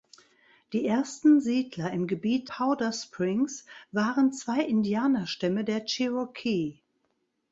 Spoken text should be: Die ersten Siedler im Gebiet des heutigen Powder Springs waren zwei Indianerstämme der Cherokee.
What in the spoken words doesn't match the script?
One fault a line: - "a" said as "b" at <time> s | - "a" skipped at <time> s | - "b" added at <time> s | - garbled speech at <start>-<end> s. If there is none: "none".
- "des heutigen" skipped at 2.5 s